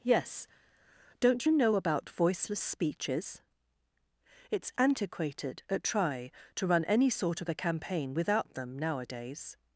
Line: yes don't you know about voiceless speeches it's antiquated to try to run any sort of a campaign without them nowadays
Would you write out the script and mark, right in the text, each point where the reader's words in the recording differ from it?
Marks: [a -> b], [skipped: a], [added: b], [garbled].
yes don't you know about voiceless speeches it's antiquated [to -> at] try to run any sort of a campaign without them nowadays